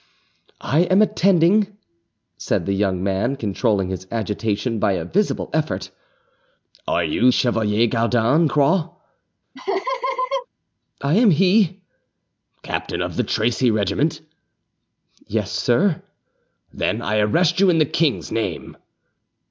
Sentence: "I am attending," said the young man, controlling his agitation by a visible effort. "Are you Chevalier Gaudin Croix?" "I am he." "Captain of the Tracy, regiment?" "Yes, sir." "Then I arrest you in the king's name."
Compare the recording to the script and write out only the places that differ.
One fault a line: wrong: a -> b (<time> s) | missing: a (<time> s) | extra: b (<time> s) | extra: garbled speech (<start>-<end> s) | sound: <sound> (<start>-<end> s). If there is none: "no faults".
sound: laugh (9.5-10.5 s)